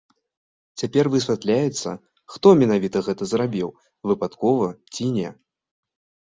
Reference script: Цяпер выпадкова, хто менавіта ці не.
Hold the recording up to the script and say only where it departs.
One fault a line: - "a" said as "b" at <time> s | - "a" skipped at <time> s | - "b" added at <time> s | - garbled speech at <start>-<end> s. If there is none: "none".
- "выпадкова" said as "высвятляецца" at 1.1 s
- "гэта зрабіў выпадкова" added at 3.1 s